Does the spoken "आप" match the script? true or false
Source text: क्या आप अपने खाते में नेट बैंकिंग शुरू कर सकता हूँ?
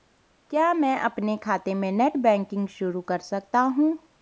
false